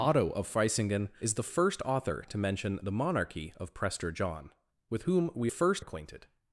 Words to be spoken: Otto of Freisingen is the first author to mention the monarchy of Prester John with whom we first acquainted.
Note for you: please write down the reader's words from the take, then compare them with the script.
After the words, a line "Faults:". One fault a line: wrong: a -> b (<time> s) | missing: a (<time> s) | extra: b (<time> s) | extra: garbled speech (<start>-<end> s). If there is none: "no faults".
Otto of Freisingen is the first author to mention the monarchy of Prester John with whom we first acquainted.
Faults:
no faults